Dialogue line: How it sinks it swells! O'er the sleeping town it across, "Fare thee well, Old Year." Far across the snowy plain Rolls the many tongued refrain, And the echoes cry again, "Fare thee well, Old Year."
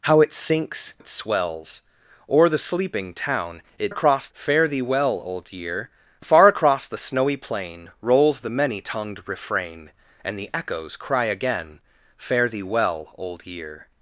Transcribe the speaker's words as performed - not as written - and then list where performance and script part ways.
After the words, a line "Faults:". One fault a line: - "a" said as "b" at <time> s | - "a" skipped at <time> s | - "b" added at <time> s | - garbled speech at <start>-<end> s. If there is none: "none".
How it sinks it swells! O'er the sleeping town it across, "Fare thee well, Old Year." Far across the snowy plain Rolls the many tongued refrain, And the echoes cry again, "Fare thee well, Old Year."
Faults:
none